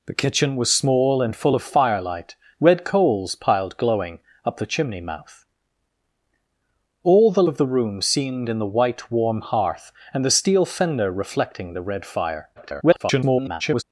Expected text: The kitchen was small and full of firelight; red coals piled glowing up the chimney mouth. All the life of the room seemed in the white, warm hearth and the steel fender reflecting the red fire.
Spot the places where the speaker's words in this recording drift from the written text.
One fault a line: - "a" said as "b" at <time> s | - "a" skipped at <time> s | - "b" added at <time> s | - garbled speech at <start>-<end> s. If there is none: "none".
- "life" skipped at 7.4 s
- garbled speech at 12.6-13.8 s